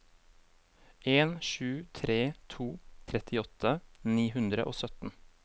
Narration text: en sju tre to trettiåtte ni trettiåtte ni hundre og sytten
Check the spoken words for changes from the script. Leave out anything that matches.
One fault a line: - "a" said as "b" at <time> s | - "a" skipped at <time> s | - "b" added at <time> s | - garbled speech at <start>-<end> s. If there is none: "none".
- "trettiåtte ni" skipped at 4.3 s